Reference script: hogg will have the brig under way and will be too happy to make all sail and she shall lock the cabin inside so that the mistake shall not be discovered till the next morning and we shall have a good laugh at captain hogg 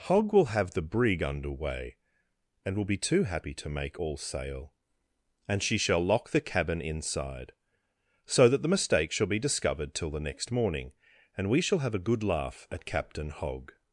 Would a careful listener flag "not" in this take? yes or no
yes